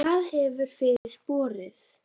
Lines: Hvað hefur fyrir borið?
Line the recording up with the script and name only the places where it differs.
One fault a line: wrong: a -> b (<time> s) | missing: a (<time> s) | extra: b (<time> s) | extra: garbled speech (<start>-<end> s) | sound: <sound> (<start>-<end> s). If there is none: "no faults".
sound: dropout (1.0-1.0 s)